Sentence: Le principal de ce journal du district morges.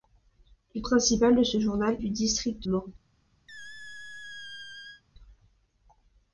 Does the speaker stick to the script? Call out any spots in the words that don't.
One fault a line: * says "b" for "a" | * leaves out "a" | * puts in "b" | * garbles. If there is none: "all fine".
all fine